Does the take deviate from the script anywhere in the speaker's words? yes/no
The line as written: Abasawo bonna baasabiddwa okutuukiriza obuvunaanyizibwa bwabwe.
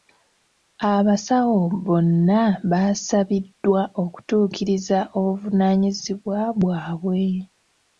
no